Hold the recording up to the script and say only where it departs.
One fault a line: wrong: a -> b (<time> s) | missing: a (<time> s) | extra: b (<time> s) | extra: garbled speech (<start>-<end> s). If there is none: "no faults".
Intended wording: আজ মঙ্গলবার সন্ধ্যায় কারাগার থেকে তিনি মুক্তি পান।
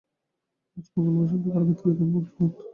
no faults